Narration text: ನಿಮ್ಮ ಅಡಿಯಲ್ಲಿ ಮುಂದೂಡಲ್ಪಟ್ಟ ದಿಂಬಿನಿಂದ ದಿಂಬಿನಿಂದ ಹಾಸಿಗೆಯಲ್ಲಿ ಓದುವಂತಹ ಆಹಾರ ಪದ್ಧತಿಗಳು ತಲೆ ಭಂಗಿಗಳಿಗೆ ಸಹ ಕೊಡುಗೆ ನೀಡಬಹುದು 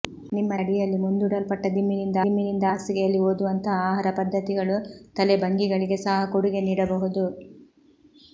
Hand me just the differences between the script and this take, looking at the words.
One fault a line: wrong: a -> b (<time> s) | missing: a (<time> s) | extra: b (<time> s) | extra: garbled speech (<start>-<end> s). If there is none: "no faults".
no faults